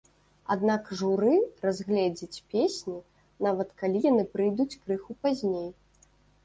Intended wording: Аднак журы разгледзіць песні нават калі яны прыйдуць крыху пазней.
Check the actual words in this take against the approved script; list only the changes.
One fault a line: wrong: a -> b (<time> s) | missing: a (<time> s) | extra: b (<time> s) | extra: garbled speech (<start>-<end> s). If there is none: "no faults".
no faults